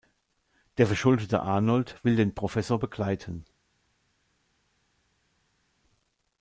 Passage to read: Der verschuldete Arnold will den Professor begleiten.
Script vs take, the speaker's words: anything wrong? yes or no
no